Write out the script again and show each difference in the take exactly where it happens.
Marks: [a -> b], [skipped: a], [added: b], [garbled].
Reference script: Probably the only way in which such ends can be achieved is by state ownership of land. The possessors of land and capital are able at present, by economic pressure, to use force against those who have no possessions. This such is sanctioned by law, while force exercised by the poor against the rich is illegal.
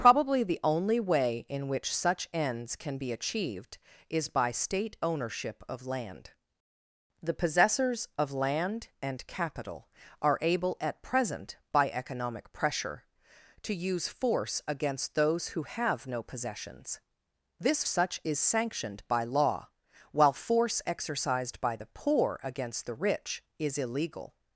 Probably the only way in which such ends can be achieved is by state ownership of land. The possessors of land and capital are able at present, by economic pressure, to use force against those who have no possessions. This such is sanctioned by law, while force exercised by the poor against the rich is illegal.